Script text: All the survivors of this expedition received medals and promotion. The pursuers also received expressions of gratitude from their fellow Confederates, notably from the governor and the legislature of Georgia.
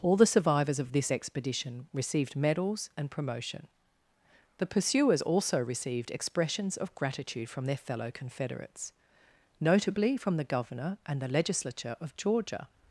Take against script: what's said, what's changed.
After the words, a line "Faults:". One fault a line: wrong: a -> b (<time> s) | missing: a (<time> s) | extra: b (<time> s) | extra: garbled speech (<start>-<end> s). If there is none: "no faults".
All the survivors of this expedition received medals and promotion. The pursuers also received expressions of gratitude from their fellow Confederates, notably from the governor and the legislature of Georgia.
Faults:
no faults